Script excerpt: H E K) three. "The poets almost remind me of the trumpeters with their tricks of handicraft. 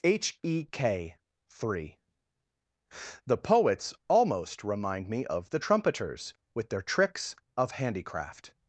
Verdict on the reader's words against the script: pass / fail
pass